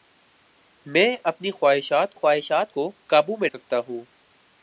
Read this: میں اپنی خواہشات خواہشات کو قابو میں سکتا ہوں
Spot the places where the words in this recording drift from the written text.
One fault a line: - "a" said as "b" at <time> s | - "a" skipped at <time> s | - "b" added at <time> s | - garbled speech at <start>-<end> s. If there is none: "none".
none